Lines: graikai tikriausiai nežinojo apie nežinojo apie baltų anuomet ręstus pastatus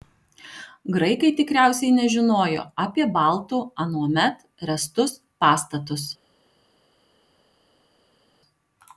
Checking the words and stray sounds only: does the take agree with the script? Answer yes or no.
no